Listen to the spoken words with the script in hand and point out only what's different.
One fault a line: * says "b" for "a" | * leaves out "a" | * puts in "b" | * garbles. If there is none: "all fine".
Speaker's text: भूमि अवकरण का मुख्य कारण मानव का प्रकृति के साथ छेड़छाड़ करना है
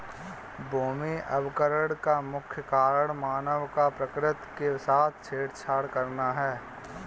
all fine